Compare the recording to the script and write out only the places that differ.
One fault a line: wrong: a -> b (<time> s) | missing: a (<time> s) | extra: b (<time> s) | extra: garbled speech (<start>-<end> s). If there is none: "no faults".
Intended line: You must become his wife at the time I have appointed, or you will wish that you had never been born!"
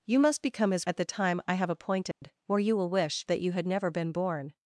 missing: wife (0.9 s)